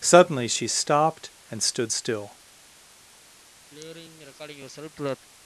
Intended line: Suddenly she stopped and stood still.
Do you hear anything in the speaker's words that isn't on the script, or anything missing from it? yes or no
no